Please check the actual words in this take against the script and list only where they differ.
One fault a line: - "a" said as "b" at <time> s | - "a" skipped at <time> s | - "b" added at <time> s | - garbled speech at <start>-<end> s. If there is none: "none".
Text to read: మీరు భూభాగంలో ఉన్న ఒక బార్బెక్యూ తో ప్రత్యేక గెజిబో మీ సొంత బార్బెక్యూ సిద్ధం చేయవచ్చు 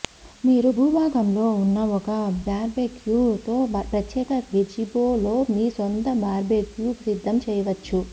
- "లో" added at 5.2 s